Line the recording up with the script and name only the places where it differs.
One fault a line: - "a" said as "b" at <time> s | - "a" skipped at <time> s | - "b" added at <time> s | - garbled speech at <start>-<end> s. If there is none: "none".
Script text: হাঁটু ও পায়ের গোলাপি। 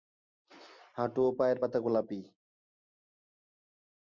- "পাতা" added at 1.6 s